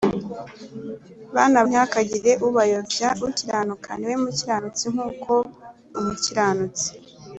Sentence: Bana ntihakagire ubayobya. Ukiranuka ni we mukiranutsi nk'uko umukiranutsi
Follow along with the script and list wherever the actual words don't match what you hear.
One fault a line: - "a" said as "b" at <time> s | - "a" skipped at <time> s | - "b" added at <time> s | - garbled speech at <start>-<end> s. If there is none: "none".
none